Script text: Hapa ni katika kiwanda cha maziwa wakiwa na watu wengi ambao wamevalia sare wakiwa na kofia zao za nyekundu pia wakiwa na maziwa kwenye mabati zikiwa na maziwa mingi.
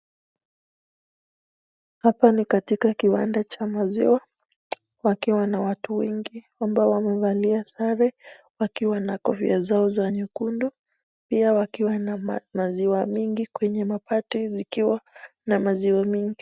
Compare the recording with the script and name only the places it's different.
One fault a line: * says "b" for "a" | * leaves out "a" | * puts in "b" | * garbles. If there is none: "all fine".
* puts in "mingi"